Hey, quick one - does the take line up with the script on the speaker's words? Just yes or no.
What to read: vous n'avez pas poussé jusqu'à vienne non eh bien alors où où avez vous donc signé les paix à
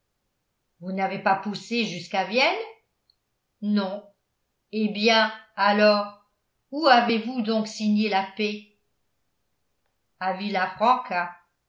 no